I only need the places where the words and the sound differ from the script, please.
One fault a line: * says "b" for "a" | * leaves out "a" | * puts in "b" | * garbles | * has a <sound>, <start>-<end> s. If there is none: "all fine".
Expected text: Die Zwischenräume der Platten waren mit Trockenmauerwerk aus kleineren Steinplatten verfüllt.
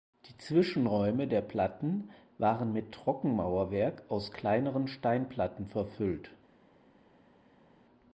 all fine